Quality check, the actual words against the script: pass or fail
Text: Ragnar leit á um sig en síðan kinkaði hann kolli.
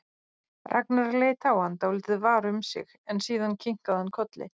fail